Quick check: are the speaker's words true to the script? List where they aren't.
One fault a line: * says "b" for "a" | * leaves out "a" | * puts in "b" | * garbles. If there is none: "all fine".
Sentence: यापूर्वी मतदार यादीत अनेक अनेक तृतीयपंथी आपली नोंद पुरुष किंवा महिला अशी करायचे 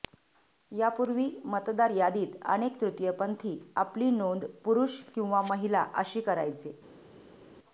* leaves out "अनेक"